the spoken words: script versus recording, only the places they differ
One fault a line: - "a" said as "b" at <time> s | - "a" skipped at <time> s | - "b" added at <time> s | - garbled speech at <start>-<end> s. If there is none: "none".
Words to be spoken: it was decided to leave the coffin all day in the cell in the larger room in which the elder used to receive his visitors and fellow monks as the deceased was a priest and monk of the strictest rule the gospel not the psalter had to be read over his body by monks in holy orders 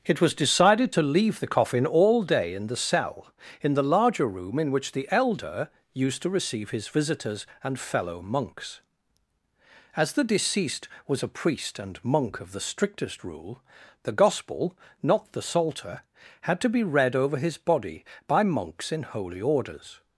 none